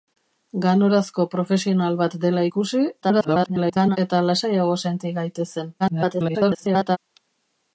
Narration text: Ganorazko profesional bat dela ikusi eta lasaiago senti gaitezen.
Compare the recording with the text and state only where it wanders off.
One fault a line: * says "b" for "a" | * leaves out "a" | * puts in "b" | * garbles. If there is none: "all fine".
* garbles
* garbles